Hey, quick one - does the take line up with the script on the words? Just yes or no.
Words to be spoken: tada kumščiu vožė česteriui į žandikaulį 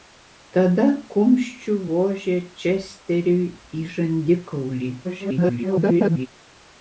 no